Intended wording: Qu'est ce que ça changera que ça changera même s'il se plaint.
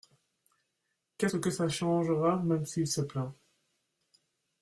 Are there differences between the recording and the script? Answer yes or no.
yes